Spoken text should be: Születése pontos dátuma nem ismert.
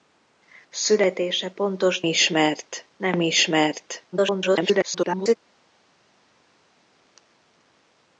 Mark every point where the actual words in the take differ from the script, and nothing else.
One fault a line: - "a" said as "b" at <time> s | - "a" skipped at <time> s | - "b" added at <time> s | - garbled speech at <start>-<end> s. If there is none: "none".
- "dátuma" said as "ismert" at 2.0 s
- garbled speech at 4.1-5.4 s